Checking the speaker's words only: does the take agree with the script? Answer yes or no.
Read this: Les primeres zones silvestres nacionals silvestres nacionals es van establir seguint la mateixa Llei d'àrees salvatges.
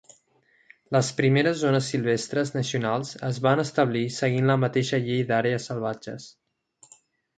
no